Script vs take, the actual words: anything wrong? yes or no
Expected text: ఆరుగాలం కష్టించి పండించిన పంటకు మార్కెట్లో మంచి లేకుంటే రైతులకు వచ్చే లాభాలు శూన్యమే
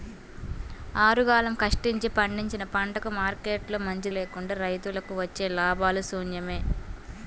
no